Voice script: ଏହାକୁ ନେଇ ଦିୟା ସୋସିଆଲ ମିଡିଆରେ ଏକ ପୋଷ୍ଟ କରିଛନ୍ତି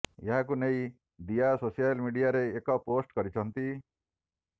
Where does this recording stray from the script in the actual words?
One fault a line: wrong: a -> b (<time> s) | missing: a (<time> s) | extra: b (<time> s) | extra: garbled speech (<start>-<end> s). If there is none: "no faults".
no faults